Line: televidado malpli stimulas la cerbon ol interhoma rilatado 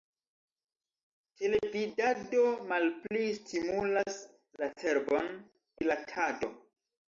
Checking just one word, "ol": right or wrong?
wrong